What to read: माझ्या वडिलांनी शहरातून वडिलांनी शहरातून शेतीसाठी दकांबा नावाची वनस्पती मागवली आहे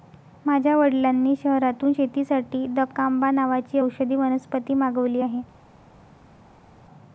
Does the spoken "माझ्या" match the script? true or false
true